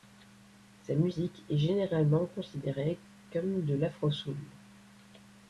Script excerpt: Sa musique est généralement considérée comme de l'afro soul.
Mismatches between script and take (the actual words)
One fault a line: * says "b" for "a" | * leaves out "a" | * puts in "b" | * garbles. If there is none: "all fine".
all fine